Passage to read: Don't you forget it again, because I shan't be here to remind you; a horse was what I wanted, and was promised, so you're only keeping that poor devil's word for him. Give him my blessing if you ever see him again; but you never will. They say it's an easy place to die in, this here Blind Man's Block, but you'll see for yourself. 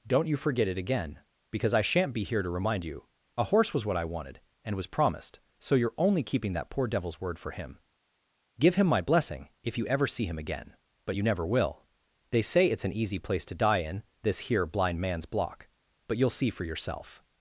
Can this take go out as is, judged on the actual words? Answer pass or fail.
pass